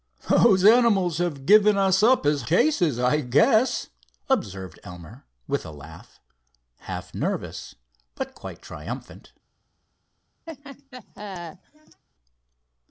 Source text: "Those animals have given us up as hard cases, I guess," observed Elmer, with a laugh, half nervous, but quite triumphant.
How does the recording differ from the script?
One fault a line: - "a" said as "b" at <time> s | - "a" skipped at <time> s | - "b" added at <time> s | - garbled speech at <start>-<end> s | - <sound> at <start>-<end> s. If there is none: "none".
- "hard" skipped at 2.4 s
- laugh at 10.5-12.0 s